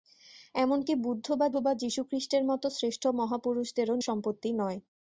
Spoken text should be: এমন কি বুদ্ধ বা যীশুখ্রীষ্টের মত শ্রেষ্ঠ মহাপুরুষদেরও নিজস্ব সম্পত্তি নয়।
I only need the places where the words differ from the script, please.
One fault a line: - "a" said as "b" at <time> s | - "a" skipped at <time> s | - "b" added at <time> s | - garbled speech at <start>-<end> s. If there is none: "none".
- "বা" added at 1.6 s
- "নিজস্ব" skipped at 3.9 s